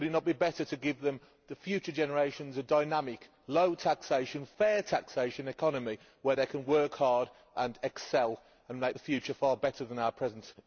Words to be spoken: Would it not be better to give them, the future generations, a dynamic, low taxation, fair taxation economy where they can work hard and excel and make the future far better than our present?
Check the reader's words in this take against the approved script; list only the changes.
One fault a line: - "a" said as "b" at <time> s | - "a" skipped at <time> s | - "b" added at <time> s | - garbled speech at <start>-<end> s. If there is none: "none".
none